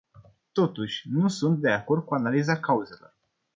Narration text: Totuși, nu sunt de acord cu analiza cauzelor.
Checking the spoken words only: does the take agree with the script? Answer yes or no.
yes